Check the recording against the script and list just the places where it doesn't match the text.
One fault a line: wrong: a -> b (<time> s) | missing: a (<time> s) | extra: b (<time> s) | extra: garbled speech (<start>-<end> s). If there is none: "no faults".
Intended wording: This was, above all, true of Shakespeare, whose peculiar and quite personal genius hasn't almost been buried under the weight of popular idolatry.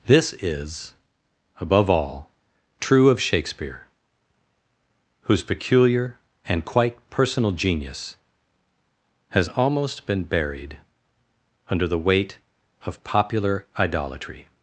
wrong: was -> is (0.4 s)
wrong: hasn't -> has (9.3 s)